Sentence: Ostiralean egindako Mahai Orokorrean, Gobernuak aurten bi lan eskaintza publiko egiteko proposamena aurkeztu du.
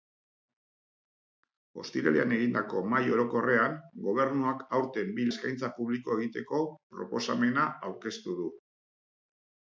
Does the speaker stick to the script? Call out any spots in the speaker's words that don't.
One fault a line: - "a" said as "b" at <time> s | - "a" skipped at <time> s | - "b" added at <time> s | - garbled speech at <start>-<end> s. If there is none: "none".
- "lan" skipped at 5.3 s